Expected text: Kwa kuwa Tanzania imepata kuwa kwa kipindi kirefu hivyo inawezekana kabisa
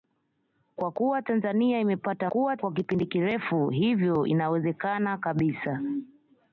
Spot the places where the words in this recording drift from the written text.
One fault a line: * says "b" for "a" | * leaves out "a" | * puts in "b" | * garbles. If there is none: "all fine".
all fine